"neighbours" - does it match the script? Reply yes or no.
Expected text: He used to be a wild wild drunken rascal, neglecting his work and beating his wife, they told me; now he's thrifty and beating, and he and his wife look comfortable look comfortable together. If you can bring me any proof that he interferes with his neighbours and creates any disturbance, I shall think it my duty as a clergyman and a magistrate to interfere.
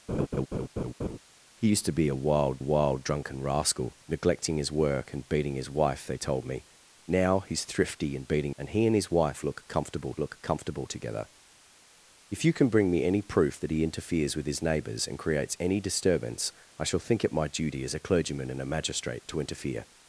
yes